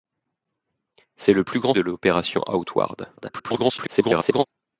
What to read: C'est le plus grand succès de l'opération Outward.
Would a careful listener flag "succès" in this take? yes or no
yes